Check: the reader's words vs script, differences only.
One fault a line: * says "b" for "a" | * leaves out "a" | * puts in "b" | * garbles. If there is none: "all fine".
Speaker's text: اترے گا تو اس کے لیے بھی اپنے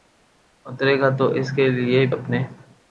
* leaves out "بھی"